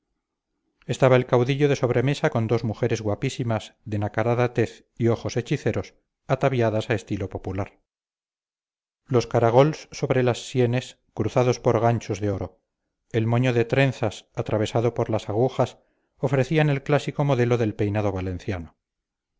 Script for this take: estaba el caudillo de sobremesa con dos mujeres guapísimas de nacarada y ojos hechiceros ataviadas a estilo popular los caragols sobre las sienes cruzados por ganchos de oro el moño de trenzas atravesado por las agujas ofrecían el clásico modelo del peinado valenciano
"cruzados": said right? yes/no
yes